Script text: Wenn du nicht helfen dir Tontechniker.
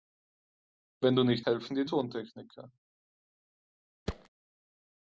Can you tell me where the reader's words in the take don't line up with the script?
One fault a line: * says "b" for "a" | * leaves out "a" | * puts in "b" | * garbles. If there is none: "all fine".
all fine